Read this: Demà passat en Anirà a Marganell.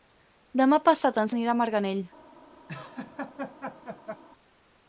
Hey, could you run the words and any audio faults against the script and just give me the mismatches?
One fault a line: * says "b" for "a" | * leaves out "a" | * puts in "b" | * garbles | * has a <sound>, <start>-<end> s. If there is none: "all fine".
* has a laugh, 2.7-4.2 s